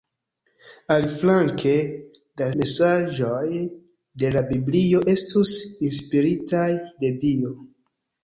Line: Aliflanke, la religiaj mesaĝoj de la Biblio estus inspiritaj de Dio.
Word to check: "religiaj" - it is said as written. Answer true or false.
false